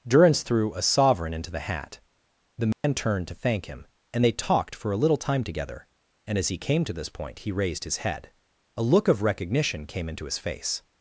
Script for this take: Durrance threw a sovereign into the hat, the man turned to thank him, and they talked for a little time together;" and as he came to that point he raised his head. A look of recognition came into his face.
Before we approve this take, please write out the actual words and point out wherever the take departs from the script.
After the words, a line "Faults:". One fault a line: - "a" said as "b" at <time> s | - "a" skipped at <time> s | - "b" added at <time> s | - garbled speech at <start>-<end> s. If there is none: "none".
Durrance threw a sovereign into the hat, the man turned to thank him, and they talked for a little time together;" and as he came to this point he raised his head. A look of recognition came into his face.
Faults:
- "that" said as "this" at 6.9 s